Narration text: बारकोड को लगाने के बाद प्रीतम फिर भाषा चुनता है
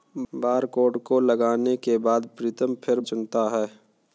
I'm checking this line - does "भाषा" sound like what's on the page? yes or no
no